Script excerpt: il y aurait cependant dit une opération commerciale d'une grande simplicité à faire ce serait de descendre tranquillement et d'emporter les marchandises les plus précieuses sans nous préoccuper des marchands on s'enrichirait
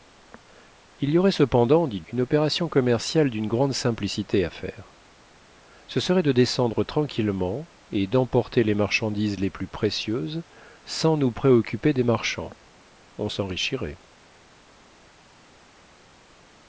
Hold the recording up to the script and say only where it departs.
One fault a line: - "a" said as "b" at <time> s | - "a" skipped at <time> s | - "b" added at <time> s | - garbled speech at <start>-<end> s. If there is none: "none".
none